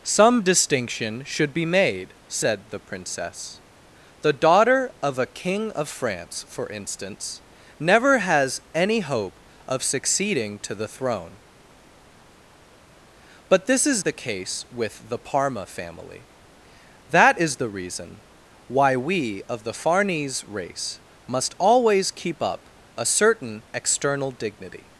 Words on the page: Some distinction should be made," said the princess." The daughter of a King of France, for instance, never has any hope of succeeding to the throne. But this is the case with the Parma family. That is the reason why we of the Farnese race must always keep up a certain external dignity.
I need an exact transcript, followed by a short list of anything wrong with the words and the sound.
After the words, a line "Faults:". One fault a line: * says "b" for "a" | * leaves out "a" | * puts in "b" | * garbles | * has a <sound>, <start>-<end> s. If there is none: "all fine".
Some distinction should be made," said the princess." The daughter of a King of France, for instance, never has any hope of succeeding to the throne. But this is the case with the Parma family. That is the reason why we of the Farnese race must always keep up a certain external dignity.
Faults:
all fine